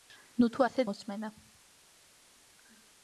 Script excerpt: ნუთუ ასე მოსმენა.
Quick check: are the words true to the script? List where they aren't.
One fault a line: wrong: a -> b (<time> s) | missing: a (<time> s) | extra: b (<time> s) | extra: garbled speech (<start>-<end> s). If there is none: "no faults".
no faults